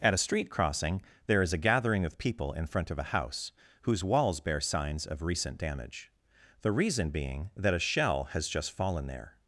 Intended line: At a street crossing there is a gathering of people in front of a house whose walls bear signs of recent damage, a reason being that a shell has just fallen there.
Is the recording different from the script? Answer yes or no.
yes